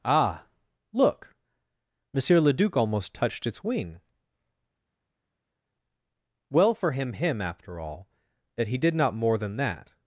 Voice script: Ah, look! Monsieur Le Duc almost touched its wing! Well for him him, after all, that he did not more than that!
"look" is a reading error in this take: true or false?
false